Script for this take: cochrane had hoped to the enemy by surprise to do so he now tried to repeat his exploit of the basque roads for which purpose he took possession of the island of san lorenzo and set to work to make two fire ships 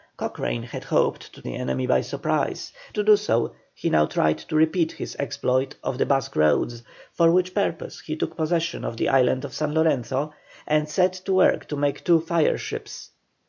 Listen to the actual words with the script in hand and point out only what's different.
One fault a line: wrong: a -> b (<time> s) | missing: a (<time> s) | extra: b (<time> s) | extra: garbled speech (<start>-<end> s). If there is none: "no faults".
no faults